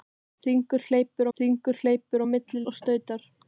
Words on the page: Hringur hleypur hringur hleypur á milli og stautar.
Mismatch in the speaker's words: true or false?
false